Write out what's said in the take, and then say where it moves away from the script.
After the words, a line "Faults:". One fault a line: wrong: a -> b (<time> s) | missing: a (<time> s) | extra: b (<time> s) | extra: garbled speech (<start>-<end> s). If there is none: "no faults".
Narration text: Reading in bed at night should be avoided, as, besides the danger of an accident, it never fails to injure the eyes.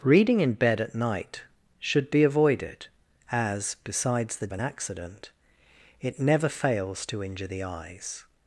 Reading in bed at night should be avoided, as, besides the an accident, it never fails to injure the eyes.
Faults:
missing: danger of (4.5 s)